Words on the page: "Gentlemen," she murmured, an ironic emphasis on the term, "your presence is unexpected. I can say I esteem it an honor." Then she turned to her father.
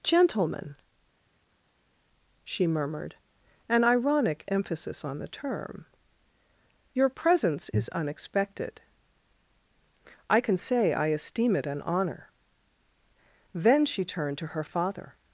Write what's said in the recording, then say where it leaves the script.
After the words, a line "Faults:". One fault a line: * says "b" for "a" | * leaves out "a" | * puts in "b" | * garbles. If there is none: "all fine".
"Gentlemen," she murmured, an ironic emphasis on the term, "your presence is unexpected. I can say I esteem it an honor." Then she turned to her father.
Faults:
all fine